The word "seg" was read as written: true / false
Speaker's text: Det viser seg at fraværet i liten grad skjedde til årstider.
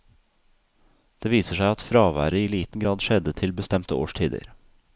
true